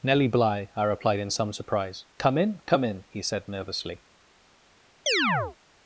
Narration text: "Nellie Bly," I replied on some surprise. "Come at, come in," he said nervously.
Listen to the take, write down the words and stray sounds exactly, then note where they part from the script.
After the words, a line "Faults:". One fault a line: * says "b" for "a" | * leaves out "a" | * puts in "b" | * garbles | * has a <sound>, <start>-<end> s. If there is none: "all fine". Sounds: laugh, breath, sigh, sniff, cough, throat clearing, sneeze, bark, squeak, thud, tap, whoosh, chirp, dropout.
"Nellie Bly," I replied in some surprise. "Come in, come in," he said nervously.
Faults:
* says "in" for "on"
* says "in" for "at"
* has a chirp, 5.1-5.6 s